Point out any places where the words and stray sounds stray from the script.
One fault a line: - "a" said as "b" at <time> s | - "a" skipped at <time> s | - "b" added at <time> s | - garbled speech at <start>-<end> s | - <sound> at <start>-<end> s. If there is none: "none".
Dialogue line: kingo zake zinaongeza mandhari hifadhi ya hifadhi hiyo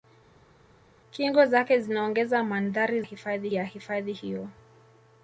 none